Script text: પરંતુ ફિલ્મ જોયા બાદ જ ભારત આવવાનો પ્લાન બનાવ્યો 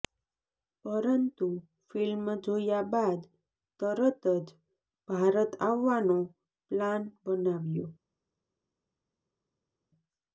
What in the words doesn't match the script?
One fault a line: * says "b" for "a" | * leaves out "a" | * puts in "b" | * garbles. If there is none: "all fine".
* puts in "તરત"